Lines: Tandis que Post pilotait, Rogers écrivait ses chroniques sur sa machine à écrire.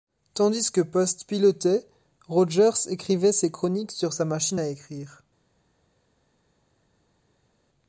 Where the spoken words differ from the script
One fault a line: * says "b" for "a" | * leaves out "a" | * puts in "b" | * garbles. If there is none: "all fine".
all fine